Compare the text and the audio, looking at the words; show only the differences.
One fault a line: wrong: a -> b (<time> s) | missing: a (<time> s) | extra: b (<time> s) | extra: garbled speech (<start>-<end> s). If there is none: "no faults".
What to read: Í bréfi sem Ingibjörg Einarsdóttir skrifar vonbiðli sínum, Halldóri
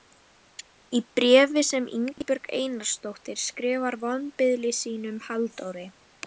no faults